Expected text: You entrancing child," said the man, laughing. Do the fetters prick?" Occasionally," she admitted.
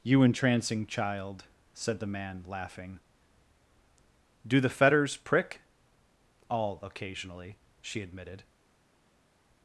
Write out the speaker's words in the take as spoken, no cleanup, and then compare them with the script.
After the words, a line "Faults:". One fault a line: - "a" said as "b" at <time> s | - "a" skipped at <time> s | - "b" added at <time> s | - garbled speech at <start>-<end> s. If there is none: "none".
You entrancing child," said the man, laughing. Do the fetters prick?" all Occasionally," she admitted.
Faults:
- "all" added at 6.5 s